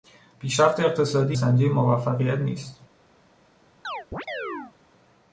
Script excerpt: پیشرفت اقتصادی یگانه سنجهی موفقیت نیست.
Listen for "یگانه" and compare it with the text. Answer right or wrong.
wrong